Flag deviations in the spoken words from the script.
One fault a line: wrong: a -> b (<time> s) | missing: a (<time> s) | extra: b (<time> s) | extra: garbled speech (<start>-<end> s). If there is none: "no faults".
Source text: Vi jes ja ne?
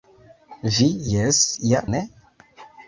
no faults